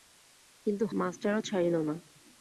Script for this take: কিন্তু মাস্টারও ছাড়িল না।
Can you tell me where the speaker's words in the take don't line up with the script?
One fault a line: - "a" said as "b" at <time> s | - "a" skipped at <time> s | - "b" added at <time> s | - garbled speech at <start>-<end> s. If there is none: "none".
none